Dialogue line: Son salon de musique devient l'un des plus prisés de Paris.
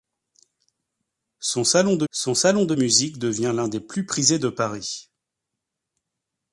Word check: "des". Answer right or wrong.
right